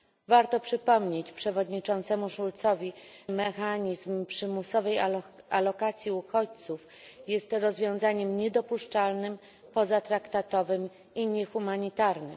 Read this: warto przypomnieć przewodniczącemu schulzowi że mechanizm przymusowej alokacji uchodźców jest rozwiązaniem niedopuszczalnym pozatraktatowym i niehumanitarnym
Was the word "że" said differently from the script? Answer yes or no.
yes